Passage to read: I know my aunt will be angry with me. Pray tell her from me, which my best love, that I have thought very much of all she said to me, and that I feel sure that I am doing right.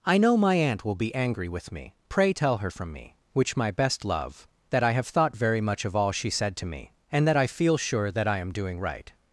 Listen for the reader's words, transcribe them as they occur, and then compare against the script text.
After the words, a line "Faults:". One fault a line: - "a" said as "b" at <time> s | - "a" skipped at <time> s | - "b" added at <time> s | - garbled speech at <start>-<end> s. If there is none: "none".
I know my aunt will be angry with me. Pray tell her from me, which my best love, that I have thought very much of all she said to me, and that I feel sure that I am doing right.
Faults:
none